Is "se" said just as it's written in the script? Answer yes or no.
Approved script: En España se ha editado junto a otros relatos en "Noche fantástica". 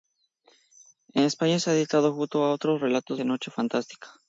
yes